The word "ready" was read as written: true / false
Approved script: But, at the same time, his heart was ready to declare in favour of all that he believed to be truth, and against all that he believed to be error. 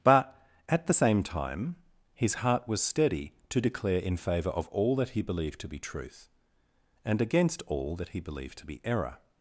false